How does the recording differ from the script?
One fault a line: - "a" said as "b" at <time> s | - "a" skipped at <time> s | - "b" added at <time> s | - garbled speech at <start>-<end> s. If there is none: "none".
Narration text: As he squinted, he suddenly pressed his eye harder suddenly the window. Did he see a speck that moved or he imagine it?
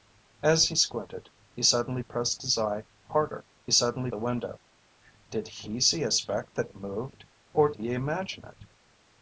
none